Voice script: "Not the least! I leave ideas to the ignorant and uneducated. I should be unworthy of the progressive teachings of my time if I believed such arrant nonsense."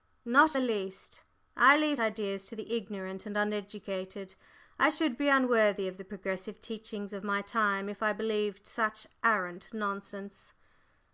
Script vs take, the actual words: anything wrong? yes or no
no